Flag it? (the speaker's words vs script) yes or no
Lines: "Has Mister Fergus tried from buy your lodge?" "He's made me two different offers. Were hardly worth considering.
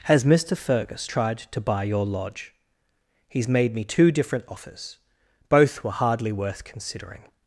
yes